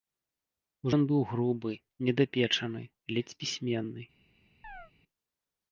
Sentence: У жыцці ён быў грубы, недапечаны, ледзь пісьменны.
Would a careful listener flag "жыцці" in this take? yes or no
yes